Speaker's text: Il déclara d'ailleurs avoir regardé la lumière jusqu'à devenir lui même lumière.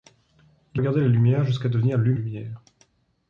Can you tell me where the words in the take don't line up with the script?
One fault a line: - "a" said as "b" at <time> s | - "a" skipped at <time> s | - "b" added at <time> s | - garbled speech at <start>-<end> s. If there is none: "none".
- "déclara d'ailleurs avoir" skipped at 0.8 s
- "même" skipped at 2.1 s